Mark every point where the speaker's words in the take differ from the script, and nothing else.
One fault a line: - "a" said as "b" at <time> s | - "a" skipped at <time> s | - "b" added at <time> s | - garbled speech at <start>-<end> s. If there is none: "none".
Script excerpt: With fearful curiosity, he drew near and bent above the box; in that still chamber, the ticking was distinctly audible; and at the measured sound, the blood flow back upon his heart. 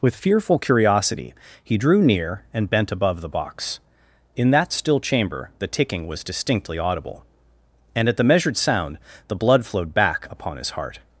- "flow" said as "flowed" at 9.6 s